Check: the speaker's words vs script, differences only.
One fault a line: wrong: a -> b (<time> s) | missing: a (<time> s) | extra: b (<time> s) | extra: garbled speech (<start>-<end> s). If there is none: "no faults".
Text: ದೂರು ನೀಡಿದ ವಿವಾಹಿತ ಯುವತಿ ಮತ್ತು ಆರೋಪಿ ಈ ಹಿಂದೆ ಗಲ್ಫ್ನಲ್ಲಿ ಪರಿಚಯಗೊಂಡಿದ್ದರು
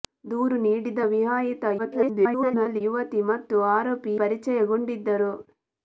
extra: garbled speech (1.8-2.8 s)
missing: ಈ ಹಿಂದೆ ಗಲ್ಫ್ನಲ್ಲಿ (4.1 s)